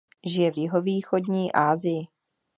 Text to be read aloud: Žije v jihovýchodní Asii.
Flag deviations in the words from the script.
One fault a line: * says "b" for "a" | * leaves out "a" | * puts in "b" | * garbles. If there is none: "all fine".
all fine